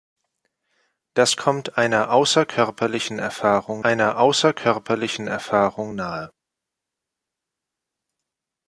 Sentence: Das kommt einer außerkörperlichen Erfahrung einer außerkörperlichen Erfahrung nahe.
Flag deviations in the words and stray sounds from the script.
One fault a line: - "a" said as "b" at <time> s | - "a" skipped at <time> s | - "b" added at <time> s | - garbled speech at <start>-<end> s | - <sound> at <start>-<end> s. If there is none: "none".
none